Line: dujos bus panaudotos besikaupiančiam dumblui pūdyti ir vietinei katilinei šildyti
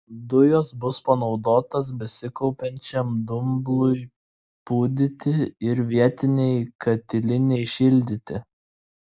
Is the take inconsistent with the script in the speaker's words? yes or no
no